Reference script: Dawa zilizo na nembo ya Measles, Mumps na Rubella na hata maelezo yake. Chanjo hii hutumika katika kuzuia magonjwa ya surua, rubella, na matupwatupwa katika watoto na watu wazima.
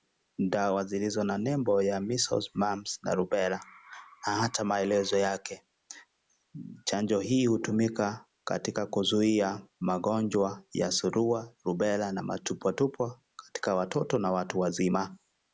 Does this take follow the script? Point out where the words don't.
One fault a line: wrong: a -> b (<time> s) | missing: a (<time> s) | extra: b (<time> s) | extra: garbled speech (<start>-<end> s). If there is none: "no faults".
no faults